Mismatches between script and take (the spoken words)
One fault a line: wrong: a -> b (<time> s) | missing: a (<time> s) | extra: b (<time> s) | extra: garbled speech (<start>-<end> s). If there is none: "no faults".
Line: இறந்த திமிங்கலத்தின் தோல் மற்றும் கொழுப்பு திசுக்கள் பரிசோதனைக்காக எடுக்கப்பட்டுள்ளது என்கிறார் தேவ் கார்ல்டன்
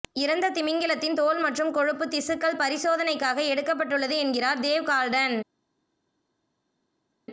no faults